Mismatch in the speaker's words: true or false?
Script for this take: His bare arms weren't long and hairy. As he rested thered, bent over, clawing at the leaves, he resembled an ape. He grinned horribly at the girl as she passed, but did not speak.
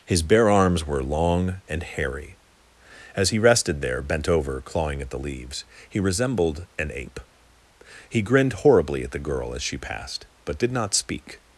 true